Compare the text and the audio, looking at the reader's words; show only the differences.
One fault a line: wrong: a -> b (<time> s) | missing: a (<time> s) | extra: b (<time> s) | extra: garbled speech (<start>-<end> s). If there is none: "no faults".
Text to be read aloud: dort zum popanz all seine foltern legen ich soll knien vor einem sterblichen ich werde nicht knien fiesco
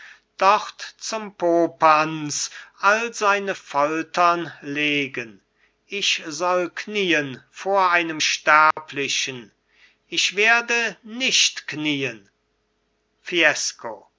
no faults